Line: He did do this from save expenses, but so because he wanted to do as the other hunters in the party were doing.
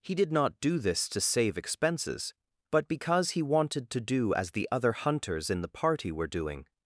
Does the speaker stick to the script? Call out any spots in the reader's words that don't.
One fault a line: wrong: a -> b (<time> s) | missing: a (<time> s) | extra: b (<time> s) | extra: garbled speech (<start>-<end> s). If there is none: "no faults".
extra: not (0.3 s)
wrong: from -> to (1.1 s)
missing: so (2.9 s)